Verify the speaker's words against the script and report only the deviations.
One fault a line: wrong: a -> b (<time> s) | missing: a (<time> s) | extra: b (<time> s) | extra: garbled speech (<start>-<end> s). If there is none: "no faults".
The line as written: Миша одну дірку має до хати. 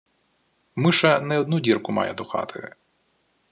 extra: не (1.2 s)